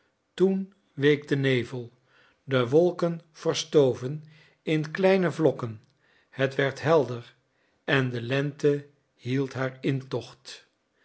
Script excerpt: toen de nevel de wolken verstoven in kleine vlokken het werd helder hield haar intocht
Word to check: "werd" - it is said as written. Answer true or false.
true